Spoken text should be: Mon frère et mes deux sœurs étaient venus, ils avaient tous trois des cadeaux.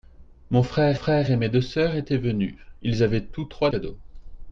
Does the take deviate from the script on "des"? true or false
true